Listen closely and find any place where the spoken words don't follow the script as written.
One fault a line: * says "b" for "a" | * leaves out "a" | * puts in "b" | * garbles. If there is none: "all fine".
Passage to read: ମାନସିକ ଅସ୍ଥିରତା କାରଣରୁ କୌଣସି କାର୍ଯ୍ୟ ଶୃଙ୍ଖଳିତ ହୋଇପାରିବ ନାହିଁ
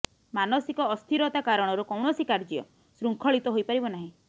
all fine